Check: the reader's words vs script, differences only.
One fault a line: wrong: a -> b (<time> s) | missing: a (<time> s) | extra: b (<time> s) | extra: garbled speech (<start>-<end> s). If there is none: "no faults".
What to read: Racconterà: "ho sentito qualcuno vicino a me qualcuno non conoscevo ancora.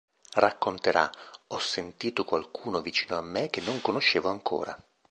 wrong: qualcuno -> che (3.5 s)